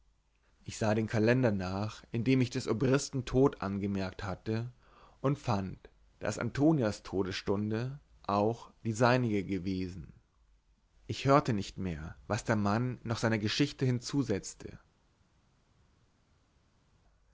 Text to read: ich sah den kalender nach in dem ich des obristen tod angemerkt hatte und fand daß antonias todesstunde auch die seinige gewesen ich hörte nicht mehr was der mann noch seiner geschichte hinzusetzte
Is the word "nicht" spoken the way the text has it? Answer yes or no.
yes